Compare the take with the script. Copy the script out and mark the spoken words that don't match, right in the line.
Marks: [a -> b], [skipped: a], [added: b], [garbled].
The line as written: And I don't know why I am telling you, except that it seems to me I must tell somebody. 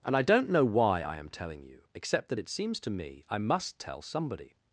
And I don't know why I am telling you, except that it seems to me I must tell somebody.